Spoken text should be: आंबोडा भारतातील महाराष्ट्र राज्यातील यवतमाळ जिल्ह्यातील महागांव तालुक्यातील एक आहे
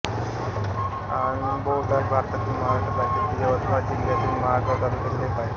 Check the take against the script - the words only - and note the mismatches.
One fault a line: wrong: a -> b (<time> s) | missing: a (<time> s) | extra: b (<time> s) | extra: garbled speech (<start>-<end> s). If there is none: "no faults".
no faults